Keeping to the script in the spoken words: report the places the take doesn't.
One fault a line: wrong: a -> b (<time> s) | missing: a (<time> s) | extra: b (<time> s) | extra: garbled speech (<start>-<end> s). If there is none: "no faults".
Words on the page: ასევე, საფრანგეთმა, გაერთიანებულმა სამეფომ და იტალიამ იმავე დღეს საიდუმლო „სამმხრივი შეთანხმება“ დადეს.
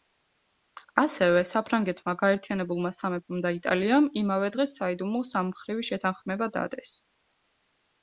no faults